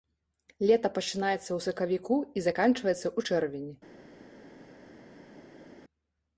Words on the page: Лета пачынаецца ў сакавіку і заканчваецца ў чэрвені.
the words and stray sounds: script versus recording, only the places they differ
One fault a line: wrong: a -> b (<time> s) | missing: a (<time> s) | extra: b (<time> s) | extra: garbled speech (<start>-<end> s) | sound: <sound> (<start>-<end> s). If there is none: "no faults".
no faults